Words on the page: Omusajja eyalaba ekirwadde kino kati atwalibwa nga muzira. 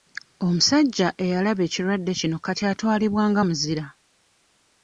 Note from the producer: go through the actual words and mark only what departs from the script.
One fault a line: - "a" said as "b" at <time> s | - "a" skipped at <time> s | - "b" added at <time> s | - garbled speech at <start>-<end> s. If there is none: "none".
none